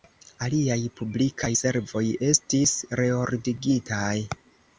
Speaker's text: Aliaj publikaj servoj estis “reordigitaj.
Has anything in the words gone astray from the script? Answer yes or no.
no